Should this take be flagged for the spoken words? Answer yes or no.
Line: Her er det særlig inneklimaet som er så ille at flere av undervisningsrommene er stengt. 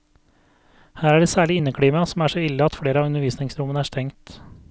no